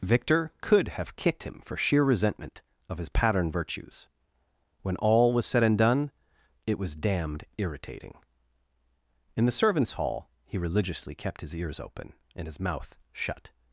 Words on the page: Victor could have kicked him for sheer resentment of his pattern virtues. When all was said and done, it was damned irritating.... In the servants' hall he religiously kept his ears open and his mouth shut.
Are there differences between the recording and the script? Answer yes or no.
no